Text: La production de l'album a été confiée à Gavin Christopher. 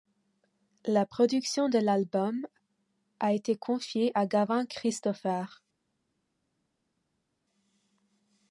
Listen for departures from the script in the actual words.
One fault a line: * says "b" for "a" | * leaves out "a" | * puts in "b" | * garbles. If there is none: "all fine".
all fine